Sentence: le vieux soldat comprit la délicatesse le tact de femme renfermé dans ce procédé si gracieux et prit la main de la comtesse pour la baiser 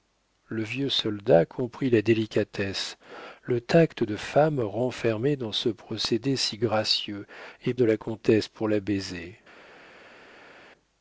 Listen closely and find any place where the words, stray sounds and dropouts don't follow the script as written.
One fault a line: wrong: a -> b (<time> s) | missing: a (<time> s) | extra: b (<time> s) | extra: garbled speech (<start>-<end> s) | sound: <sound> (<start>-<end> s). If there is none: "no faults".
missing: prit la main (7.8 s)